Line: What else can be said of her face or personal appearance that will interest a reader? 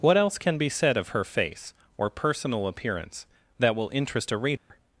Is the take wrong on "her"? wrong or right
right